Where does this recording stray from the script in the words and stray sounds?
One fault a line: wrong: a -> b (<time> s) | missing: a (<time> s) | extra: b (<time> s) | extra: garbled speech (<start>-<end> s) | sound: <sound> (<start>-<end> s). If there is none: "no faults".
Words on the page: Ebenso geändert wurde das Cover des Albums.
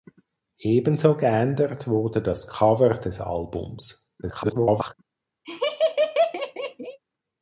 extra: garbled speech (4.2-4.9 s)
sound: laugh (5.4-7.0 s)